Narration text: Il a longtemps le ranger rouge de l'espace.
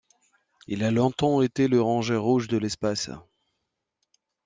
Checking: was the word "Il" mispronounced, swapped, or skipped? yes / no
no